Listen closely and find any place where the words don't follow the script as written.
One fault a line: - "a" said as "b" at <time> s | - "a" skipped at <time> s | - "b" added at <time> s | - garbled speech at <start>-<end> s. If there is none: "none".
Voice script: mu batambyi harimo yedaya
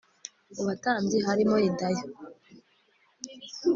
none